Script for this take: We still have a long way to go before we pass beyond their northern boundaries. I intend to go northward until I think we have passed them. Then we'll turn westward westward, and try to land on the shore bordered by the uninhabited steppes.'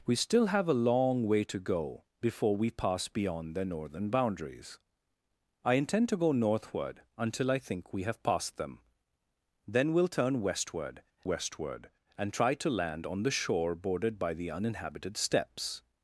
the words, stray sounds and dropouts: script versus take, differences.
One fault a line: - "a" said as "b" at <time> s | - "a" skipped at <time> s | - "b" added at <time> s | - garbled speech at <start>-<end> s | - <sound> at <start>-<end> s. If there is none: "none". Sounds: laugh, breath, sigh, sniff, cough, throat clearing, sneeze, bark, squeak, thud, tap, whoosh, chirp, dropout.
none